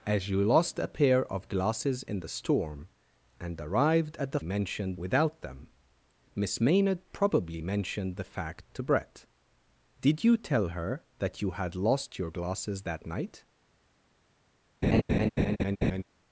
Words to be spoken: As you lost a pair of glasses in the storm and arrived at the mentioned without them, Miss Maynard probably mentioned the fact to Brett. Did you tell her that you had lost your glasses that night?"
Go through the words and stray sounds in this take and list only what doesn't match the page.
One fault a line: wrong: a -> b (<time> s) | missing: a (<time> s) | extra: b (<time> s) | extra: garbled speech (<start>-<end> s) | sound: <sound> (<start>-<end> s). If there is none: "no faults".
sound: laugh (14.8-16.0 s)